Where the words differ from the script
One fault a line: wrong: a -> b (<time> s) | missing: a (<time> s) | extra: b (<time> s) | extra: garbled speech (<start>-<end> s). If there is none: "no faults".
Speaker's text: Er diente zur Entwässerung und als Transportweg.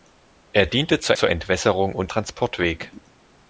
extra: zur (1.1 s)
missing: als (2.1 s)